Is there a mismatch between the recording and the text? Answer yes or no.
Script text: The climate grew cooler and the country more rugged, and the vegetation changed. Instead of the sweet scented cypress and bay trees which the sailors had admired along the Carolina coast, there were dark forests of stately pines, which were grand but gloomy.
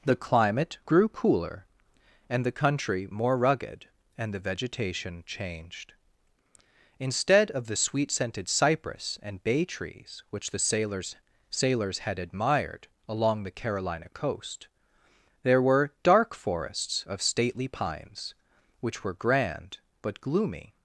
yes